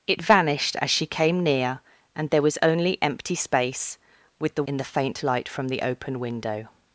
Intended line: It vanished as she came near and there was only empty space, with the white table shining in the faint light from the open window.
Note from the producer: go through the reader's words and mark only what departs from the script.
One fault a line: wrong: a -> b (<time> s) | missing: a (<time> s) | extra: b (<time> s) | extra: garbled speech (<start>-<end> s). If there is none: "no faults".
missing: white table shining (4.6 s)